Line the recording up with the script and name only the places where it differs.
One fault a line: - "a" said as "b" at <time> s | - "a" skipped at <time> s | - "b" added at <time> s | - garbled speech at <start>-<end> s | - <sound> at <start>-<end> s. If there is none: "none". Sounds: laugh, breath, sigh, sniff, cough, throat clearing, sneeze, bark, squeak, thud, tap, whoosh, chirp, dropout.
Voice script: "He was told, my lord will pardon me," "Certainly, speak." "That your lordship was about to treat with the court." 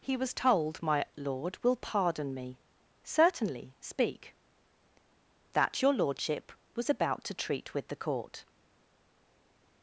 none